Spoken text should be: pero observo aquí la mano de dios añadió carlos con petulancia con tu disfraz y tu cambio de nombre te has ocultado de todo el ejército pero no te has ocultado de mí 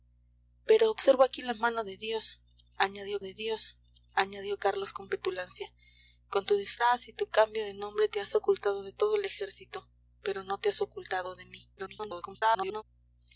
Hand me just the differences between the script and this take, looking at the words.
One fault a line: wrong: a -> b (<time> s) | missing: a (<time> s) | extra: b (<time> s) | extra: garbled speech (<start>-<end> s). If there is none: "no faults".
extra: de dios añadió (3.2 s)
extra: garbled speech (11.8-12.8 s)